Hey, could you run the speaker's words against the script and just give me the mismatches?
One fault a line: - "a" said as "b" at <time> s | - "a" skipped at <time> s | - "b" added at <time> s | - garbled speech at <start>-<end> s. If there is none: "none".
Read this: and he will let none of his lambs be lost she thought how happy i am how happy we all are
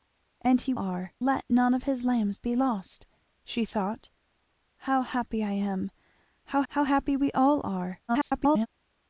- "will" said as "are" at 0.8 s
- "how" added at 6.7 s
- garbled speech at 8.1-8.7 s